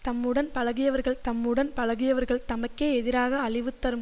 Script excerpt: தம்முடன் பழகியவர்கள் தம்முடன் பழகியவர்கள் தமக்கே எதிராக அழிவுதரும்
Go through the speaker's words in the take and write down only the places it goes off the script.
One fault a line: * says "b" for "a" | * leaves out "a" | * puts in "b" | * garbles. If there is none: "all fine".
all fine